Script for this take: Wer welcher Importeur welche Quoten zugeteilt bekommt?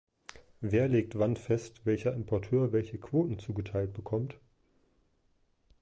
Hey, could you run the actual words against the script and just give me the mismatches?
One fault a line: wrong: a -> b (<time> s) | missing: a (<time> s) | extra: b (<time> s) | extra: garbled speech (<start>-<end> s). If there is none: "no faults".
extra: legt wann fest (0.9 s)